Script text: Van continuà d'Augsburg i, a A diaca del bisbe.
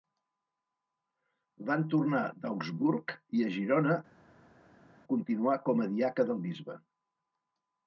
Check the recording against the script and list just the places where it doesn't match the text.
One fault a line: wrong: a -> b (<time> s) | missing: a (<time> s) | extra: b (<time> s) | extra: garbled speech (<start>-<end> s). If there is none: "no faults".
wrong: continuà -> tornar (1.9 s)
extra: Girona continuà com (3.6 s)